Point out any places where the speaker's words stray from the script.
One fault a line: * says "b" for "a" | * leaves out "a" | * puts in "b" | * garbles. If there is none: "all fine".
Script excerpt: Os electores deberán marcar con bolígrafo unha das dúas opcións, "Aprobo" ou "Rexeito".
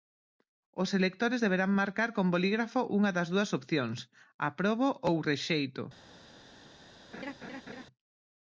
all fine